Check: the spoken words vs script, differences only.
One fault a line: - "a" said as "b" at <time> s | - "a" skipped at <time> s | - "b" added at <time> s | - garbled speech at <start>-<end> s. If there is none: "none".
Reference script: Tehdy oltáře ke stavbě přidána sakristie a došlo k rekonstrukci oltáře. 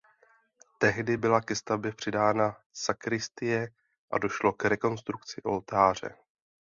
- "oltáře" said as "byla" at 1.2 s